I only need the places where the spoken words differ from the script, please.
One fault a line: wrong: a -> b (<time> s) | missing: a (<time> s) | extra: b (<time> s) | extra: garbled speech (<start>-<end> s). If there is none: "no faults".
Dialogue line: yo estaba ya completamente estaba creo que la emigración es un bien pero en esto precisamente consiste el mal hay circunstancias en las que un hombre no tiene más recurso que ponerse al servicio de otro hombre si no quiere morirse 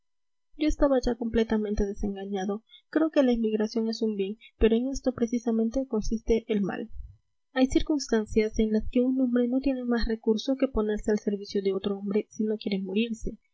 wrong: estaba -> desengañado (1.9 s)